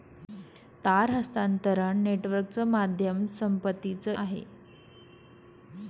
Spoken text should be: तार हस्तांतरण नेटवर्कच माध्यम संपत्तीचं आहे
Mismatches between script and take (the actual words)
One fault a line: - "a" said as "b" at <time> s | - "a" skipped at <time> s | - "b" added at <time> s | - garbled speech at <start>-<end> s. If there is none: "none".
none